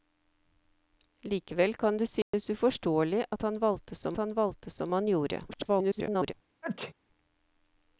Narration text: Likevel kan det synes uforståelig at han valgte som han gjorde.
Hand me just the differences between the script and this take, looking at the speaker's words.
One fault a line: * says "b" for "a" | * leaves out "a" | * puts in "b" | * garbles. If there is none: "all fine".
* puts in "valgte som han"
* garbles